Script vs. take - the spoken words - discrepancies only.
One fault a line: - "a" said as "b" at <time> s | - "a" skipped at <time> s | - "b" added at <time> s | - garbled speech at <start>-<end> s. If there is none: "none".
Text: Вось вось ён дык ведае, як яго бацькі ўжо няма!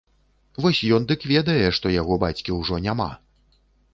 - "вось" skipped at 0.8 s
- "як" said as "што" at 1.8 s